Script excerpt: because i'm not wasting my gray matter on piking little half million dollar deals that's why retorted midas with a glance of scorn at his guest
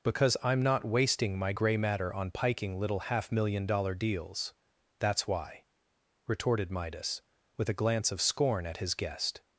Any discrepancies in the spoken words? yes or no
no